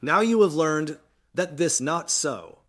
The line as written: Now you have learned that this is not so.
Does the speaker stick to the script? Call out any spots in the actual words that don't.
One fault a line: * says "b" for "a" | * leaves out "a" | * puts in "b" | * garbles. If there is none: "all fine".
* leaves out "is"